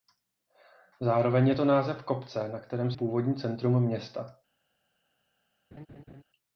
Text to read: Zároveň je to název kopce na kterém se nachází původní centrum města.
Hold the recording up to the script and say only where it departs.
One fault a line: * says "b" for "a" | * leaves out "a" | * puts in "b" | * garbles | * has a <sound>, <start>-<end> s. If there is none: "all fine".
* leaves out "se nachází"
* has a laugh, 5.7-6.2 s